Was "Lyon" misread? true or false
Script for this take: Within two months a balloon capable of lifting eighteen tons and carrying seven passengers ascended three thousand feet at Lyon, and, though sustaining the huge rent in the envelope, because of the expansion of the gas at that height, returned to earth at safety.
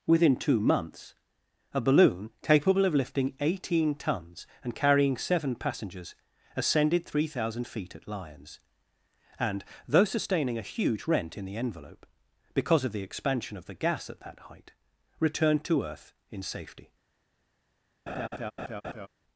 true